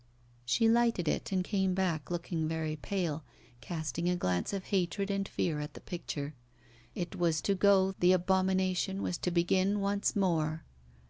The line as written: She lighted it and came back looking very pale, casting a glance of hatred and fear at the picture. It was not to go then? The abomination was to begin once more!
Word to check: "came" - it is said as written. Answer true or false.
true